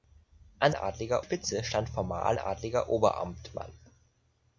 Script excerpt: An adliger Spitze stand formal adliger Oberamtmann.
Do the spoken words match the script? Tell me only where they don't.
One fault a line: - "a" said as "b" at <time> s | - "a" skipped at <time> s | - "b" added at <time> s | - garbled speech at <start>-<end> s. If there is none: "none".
none